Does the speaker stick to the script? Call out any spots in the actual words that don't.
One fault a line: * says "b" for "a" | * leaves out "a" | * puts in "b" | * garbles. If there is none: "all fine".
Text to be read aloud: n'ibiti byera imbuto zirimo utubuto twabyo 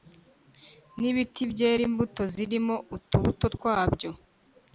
all fine